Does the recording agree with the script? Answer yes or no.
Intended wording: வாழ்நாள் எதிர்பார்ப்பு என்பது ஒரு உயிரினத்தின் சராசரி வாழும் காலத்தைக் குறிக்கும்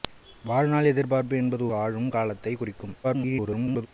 no